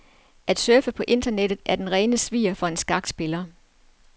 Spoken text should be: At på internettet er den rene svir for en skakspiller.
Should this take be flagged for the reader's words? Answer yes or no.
yes